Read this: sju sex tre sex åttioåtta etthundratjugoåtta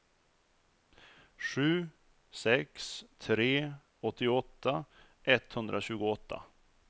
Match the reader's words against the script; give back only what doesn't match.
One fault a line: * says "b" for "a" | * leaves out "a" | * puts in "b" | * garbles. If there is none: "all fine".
* leaves out "sex"